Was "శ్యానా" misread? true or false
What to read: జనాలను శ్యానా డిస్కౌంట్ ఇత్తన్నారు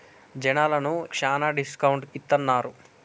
false